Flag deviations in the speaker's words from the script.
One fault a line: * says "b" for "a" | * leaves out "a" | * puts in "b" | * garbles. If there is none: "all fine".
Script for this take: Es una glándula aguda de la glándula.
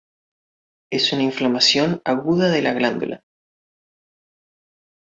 * says "inflamación" for "glándula"